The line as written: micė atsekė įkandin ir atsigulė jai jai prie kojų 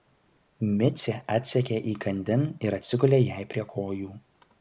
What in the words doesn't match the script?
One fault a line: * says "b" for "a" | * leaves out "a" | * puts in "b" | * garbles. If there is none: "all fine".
* leaves out "jai"